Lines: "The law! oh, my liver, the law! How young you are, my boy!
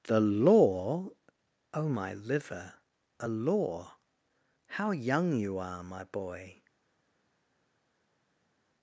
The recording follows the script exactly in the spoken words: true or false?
false